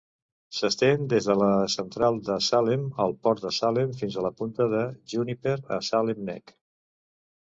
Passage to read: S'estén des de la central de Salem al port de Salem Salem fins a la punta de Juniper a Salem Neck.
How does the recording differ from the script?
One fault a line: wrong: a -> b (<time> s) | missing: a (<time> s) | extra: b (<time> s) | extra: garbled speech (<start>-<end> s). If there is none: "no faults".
missing: Salem (3.9 s)